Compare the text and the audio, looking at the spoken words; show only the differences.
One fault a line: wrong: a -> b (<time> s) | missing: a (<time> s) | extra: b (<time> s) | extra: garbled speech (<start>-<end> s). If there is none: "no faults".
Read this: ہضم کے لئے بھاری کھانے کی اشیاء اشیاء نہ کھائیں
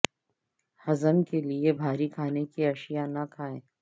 missing: اشیاء (3.1 s)